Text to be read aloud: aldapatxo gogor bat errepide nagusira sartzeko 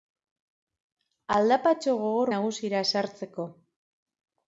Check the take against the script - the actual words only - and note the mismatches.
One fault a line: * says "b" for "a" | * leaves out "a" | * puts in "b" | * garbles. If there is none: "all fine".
* leaves out "bat errepide"